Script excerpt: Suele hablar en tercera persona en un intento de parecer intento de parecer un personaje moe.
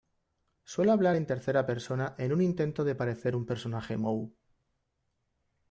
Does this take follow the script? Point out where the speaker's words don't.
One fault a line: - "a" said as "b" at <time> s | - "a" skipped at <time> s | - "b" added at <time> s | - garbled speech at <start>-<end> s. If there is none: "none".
- "intento de parecer" skipped at 3.4 s